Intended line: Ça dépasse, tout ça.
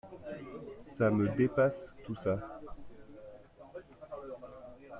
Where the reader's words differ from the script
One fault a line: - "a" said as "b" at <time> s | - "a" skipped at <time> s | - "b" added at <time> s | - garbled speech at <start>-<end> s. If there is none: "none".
- "me" added at 1.1 s